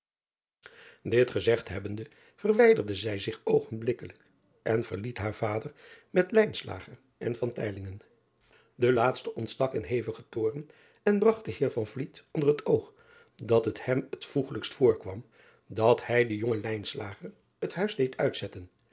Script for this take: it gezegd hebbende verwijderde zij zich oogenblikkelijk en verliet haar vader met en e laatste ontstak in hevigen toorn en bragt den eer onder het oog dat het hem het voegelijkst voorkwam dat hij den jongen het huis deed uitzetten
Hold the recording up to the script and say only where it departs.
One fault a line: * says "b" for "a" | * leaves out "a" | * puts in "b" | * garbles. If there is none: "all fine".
all fine